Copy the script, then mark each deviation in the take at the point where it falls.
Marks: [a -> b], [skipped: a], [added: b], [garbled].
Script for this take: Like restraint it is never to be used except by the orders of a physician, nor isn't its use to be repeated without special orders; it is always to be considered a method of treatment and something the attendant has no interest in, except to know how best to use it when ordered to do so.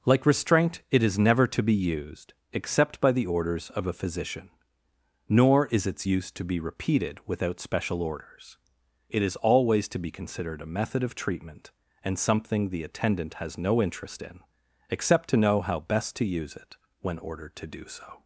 Like restraint it is never to be used except by the orders of a physician, nor [isn't -> is] its use to be repeated without special orders; it is always to be considered a method of treatment and something the attendant has no interest in, except to know how best to use it when ordered to do so.